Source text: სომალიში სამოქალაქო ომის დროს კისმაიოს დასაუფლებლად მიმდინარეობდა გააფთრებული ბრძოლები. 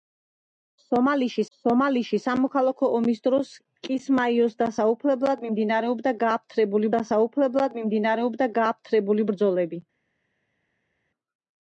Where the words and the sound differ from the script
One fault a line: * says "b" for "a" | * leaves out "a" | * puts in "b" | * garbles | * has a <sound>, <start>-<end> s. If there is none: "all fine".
* puts in "სომალიში"
* puts in "დასაუფლებლად მიმდინარეობდა გააფთრებული"